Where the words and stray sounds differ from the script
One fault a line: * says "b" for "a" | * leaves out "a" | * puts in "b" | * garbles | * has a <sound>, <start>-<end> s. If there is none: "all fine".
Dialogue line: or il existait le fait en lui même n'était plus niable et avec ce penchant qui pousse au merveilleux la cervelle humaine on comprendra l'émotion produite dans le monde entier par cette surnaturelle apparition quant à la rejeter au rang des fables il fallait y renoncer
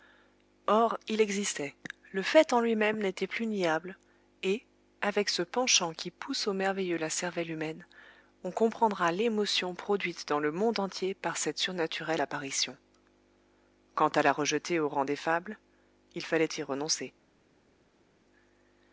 all fine